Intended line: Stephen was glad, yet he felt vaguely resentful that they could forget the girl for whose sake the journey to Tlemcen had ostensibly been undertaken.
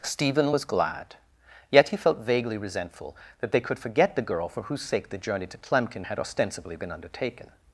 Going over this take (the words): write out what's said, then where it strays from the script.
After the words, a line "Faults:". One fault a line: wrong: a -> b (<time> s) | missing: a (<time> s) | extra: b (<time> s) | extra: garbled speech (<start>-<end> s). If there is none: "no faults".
Stephen was glad, yet he felt vaguely resentful that they could forget the girl for whose sake the journey to Tlemcen had ostensibly been undertaken.
Faults:
no faults